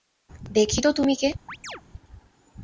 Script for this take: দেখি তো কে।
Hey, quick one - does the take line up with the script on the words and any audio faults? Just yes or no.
no